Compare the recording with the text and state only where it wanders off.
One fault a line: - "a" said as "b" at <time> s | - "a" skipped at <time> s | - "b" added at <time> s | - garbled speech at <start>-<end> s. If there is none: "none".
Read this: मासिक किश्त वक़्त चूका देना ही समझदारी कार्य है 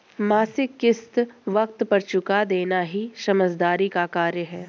- "पर" added at 1.8 s
- "का" added at 3.9 s